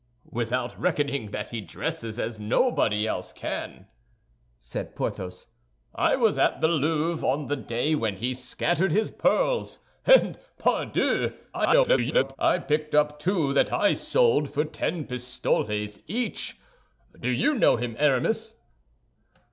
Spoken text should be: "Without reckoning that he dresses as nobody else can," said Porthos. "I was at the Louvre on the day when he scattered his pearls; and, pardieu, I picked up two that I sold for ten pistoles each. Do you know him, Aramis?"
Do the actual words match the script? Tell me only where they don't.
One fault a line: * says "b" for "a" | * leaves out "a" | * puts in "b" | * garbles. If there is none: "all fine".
* garbles